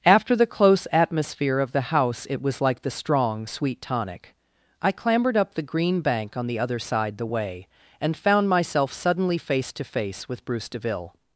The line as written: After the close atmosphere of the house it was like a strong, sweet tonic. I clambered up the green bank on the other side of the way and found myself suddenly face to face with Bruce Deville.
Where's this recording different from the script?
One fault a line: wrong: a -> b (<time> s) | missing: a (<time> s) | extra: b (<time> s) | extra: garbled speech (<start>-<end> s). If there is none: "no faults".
wrong: a -> the (2.8 s)
missing: of (7.2 s)